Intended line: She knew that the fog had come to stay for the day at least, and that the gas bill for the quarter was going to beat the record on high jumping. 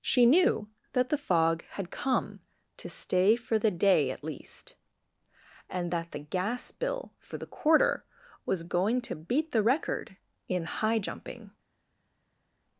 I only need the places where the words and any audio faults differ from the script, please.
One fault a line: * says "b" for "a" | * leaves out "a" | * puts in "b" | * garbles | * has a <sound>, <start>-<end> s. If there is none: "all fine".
* says "in" for "on"